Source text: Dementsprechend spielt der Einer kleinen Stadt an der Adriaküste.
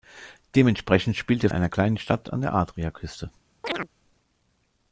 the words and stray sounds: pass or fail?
fail